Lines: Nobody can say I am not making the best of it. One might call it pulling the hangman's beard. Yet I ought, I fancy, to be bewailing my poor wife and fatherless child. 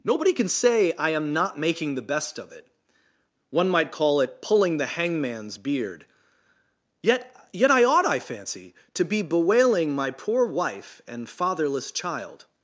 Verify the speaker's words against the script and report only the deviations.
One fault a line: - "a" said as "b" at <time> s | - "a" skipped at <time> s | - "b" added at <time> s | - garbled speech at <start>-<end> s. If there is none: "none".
- "Yet" added at 7.5 s